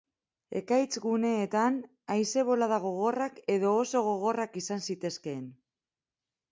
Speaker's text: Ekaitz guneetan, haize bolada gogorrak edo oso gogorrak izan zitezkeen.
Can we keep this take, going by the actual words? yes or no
yes